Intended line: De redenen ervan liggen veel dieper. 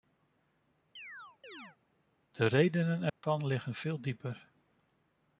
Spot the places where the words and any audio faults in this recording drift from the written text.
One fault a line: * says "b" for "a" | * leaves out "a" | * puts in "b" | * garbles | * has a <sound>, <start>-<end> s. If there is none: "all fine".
* has a chirp, 1.0-1.8 s
* has a dropout, 3.1-3.2 s